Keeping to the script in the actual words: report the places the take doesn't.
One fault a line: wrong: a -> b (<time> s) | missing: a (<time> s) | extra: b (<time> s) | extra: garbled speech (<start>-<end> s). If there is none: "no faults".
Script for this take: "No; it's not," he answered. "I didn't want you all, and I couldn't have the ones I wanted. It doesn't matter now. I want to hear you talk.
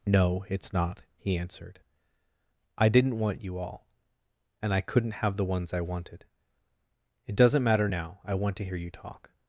no faults